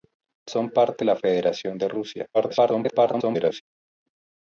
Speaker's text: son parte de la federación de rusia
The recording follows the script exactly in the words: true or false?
false